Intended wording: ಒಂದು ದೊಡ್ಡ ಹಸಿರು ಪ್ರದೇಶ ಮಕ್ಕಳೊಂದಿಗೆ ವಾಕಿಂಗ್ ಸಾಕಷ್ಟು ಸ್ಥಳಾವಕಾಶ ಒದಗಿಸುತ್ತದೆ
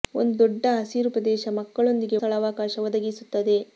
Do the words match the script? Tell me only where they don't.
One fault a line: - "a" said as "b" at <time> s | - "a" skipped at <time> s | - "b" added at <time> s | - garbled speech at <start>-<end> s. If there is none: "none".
- "ವಾಕಿಂಗ್ ಸಾಕಷ್ಟು" skipped at 2.2 s